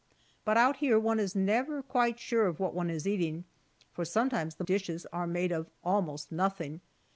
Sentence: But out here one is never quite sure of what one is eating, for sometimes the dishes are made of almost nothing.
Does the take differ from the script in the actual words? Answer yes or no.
no